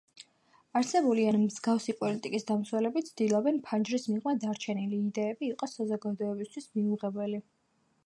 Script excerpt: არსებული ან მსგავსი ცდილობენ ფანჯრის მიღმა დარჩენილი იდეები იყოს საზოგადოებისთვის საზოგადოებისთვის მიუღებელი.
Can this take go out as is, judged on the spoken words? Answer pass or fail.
fail